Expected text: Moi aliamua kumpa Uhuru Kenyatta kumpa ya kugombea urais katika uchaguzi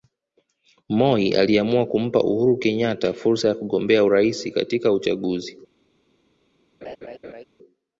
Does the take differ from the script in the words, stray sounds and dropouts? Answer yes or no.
yes